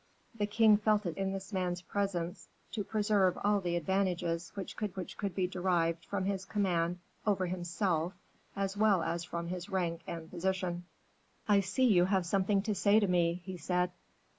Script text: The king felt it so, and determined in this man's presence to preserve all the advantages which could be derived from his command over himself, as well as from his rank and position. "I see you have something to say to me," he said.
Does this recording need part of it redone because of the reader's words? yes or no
yes